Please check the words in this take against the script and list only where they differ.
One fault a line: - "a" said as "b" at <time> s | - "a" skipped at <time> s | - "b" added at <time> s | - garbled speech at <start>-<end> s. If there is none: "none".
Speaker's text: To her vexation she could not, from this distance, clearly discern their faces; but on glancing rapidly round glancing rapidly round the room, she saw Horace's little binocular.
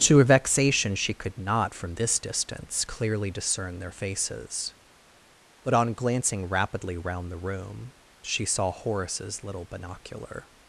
- "glancing rapidly round" skipped at 7.3 s